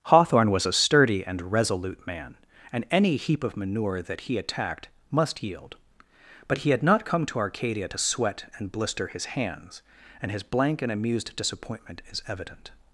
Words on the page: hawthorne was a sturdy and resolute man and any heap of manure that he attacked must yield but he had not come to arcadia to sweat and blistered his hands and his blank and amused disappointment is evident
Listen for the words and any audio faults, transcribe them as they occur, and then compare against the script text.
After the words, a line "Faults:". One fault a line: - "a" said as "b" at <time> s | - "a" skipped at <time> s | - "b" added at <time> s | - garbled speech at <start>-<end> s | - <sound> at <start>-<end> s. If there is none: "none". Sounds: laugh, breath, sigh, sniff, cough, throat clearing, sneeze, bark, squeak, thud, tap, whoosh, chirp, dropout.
hawthorne was a sturdy and resolute man and any heap of manure that he attacked must yield but he had not come to arcadia to sweat and blister his hands and his blank and amused disappointment is evident
Faults:
- "blistered" said as "blister" at 8.7 s